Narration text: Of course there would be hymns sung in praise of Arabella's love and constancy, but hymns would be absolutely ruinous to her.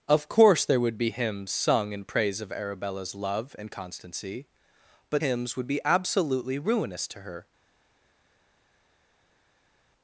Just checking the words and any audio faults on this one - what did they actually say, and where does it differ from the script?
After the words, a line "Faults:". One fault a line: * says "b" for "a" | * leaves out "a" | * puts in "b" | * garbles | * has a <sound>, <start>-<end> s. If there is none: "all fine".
Of course there would be hymns sung in praise of Arabella's love and constancy, but hymns would be absolutely ruinous to her.
Faults:
all fine